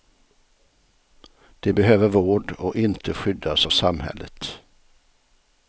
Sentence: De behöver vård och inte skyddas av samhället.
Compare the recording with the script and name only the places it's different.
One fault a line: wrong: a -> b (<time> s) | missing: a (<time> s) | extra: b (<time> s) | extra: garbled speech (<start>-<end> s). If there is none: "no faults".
no faults